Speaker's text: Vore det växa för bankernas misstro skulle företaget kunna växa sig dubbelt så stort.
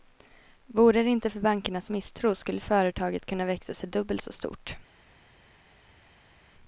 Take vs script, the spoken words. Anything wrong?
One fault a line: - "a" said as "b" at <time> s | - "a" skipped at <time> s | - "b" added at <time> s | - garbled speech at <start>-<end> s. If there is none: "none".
- "växa" said as "inte" at 1.1 s